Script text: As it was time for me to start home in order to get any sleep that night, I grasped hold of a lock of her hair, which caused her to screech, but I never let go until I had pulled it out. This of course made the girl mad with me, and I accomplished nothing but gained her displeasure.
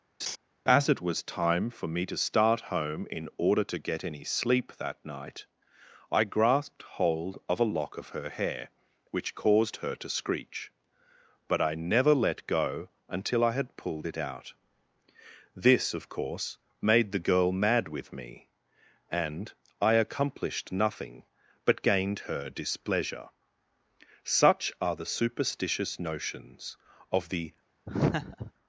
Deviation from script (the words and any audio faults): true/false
true